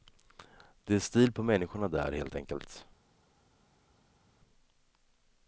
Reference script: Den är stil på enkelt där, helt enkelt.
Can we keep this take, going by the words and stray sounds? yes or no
no